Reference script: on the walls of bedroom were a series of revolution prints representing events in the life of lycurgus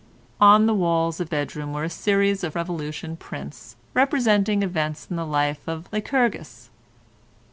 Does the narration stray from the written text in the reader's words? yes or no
no